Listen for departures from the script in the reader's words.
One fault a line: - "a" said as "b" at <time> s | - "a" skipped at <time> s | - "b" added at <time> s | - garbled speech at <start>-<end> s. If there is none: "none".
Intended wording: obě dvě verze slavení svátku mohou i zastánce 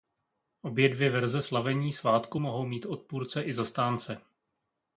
- "mít odpůrce" added at 2.6 s